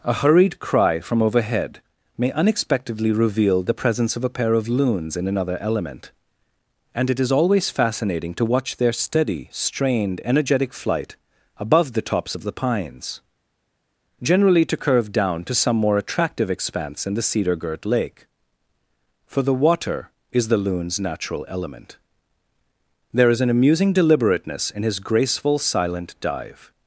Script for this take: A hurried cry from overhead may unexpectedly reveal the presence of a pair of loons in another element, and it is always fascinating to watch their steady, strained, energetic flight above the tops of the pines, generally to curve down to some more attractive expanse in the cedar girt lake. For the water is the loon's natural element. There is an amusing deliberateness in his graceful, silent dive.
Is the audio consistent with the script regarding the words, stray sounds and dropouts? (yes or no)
yes